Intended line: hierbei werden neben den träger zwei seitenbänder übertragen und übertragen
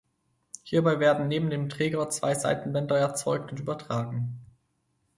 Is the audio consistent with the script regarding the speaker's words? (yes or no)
no